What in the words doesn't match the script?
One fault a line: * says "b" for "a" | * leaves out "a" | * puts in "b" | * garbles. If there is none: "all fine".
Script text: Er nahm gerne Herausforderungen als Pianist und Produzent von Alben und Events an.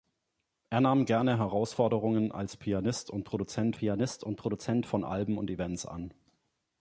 * puts in "Pianist und Produzent"